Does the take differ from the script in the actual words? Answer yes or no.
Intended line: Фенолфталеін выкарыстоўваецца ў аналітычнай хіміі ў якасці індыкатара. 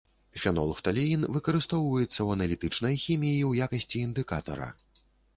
no